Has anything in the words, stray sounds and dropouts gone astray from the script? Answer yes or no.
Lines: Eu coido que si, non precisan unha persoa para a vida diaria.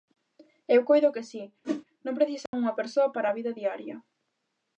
yes